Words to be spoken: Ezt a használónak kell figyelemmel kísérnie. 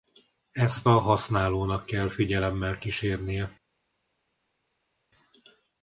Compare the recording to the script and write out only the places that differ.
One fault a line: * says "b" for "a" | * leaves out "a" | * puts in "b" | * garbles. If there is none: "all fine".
all fine